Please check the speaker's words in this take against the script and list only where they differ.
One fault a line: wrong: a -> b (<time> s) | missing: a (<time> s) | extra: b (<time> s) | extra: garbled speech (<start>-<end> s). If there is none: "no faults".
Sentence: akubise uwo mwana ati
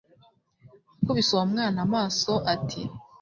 extra: amaso (1.9 s)